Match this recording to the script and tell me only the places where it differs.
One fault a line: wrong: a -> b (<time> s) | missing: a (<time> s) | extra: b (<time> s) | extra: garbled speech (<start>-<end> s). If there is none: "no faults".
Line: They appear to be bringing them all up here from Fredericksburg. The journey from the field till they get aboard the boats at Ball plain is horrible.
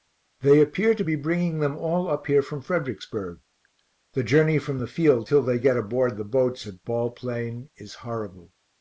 no faults